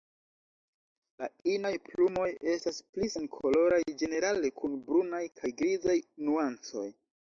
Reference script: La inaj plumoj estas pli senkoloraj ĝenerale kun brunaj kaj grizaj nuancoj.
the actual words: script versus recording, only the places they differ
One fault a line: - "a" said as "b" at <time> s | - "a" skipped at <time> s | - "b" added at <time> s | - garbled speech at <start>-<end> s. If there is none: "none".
none